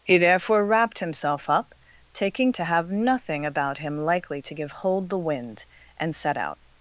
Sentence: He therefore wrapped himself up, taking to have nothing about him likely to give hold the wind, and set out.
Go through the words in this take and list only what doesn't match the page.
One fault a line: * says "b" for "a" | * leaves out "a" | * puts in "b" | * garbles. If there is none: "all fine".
all fine